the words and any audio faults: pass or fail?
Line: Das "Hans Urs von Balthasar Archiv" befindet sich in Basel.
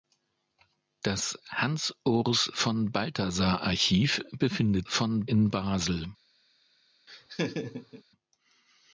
fail